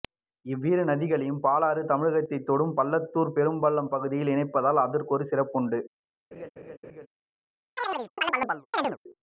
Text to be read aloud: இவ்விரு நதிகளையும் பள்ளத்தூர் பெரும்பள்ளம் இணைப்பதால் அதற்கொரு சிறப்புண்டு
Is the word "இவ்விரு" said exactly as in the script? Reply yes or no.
yes